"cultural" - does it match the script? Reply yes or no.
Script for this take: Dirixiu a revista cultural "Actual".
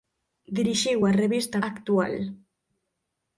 no